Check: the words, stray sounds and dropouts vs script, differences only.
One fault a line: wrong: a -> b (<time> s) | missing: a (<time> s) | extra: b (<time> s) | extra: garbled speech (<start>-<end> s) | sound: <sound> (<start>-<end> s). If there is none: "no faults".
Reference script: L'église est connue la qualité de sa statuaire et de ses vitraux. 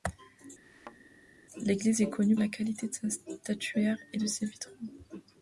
sound: thud (0.6-1.0 s)